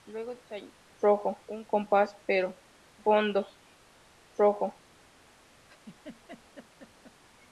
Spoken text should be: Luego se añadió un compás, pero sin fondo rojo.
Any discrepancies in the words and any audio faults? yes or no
yes